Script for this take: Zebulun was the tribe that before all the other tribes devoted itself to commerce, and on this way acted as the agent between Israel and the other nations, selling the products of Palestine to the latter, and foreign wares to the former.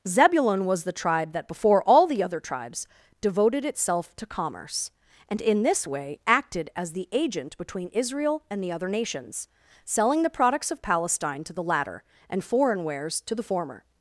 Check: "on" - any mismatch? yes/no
yes